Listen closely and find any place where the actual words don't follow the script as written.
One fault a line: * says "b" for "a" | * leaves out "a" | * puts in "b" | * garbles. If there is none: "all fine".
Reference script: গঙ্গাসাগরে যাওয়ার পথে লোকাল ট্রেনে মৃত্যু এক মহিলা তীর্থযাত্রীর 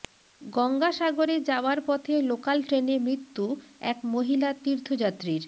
all fine